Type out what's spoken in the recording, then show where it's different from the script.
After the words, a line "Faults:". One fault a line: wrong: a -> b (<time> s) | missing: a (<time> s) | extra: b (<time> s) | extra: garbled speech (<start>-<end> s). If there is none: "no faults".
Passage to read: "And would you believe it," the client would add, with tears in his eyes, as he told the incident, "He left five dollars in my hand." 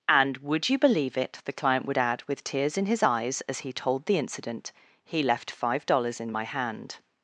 "And would you believe it," the client would add, with tears in his eyes, as he told the incident, "He left five dollars in my hand."
Faults:
no faults